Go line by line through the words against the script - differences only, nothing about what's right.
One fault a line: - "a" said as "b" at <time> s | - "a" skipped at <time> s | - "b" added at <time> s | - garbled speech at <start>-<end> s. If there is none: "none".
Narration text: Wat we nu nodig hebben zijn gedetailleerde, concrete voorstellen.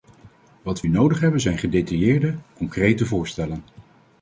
- "we" skipped at 0.8 s